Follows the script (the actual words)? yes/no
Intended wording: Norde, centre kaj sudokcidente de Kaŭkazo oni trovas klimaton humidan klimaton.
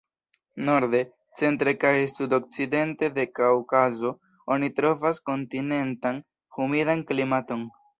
no